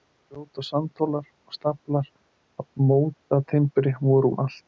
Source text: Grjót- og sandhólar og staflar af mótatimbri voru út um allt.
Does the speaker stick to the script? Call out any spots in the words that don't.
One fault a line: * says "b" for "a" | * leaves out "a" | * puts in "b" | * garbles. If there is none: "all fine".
* leaves out "út"